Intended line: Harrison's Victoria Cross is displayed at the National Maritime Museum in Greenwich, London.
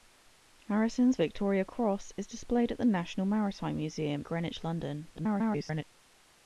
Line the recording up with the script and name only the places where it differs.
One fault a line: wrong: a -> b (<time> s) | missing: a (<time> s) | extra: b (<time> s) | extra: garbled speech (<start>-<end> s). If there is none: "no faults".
missing: in (4.2 s)
extra: garbled speech (5.2-5.8 s)